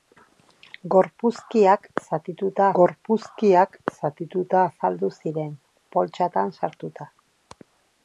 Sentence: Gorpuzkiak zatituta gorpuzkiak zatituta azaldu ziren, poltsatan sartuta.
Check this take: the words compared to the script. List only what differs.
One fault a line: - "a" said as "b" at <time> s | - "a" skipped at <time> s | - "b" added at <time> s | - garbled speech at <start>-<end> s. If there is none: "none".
none